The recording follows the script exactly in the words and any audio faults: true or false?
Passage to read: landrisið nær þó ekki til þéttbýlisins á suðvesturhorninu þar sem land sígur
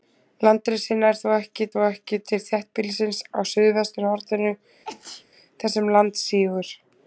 false